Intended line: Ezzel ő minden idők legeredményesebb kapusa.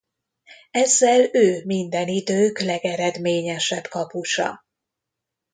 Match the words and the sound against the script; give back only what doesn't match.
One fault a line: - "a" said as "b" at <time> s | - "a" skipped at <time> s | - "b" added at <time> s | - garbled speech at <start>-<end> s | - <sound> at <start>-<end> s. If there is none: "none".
none